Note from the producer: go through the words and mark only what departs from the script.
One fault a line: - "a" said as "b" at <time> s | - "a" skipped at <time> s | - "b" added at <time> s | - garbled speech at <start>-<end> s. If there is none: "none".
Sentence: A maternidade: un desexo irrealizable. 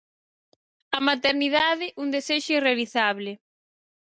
none